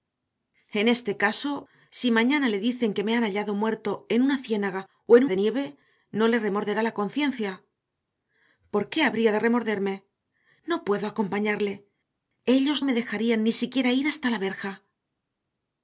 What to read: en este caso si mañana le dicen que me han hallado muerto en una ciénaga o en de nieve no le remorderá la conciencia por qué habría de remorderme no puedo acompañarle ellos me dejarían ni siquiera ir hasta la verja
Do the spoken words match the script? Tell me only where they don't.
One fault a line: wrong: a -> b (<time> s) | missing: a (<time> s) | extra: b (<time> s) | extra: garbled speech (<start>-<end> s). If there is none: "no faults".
no faults